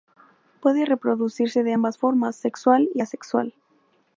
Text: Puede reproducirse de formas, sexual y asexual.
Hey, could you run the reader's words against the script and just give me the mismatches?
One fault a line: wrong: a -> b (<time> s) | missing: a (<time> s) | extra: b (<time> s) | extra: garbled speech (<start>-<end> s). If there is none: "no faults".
extra: ambas (1.7 s)